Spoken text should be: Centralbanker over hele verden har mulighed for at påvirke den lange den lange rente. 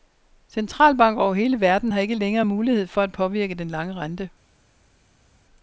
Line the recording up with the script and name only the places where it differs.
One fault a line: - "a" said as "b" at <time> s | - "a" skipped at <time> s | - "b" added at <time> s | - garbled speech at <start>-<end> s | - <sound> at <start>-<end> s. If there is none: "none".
- "ikke længere" added at 2.0 s
- "den lange" skipped at 3.9 s